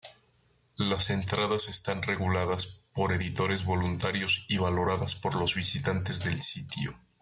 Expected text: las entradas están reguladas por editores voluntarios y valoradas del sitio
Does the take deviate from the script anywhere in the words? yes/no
yes